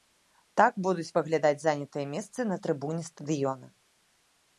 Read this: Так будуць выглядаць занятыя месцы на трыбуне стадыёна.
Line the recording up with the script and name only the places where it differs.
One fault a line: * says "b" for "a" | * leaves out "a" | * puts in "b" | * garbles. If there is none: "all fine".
all fine